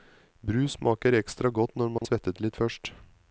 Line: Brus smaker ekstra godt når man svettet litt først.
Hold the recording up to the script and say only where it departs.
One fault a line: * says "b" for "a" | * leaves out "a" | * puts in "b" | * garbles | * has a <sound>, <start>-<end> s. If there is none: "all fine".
* has a dropout, 2.0-2.0 s